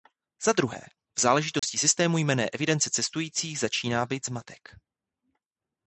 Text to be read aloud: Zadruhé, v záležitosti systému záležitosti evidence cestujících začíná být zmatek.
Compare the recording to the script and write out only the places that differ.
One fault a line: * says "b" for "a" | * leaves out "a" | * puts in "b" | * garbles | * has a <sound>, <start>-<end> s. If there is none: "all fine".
* has a dropout, 1.6-1.6 s
* says "jmenné" for "záležitosti"